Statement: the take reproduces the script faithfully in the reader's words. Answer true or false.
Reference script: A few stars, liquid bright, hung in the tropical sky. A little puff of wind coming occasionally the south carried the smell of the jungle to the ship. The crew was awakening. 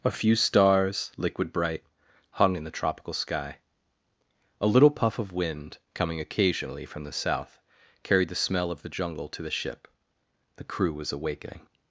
false